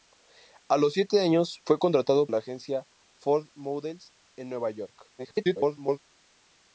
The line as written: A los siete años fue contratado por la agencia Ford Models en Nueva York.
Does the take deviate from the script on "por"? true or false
true